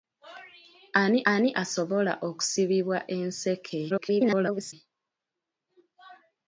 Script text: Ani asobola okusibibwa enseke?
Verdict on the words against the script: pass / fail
fail